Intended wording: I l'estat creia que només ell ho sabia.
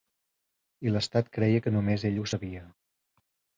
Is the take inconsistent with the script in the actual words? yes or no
no